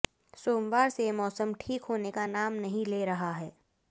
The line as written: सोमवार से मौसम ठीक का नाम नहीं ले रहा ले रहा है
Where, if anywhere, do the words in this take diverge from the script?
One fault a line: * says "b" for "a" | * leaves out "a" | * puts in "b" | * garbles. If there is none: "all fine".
* puts in "होने"
* leaves out "ले रहा"